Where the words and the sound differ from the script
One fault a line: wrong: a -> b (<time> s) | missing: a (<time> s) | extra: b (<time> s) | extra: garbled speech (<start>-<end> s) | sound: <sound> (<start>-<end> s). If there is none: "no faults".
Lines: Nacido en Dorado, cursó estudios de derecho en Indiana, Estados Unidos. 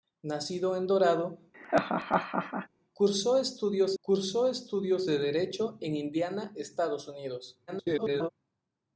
sound: laugh (1.5-2.7 s)
extra: cursó estudios (4.0 s)
extra: garbled speech (7.7-8.3 s)